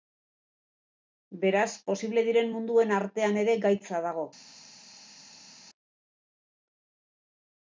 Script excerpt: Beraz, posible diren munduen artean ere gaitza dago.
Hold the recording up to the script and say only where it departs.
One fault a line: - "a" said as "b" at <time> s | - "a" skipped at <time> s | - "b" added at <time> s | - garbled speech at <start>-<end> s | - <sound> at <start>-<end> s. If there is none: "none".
none